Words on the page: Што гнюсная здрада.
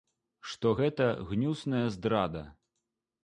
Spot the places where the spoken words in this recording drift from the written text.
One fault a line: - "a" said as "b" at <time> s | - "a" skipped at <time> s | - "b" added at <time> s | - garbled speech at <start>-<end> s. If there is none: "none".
- "гэта" added at 0.8 s